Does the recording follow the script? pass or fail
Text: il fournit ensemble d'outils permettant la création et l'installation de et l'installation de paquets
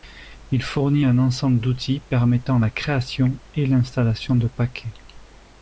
fail